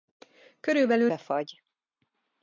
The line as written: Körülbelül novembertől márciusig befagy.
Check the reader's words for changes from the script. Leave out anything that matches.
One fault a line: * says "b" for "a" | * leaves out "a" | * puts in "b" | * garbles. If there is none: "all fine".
* leaves out "novembertől márciusig"